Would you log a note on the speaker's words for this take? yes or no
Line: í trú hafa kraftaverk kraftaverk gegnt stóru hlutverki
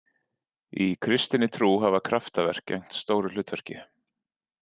yes